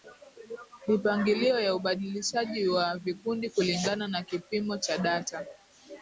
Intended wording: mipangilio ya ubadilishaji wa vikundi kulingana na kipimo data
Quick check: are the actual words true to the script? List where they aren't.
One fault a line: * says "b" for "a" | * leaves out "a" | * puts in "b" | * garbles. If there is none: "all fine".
* puts in "cha"